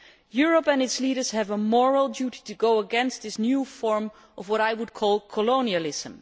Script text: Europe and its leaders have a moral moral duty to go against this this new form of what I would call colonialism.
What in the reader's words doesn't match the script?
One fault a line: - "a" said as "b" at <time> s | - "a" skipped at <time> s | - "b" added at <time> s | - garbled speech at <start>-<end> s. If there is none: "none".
- "moral" skipped at 2.1 s
- "this" skipped at 3.4 s